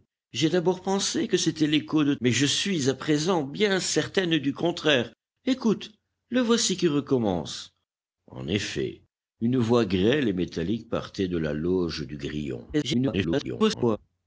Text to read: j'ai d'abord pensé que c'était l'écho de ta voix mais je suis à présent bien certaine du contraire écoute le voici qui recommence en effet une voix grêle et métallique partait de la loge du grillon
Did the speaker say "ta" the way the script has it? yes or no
no